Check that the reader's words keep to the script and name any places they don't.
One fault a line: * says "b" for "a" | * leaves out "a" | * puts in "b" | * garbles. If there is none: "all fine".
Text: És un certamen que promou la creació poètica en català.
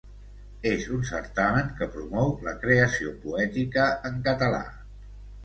all fine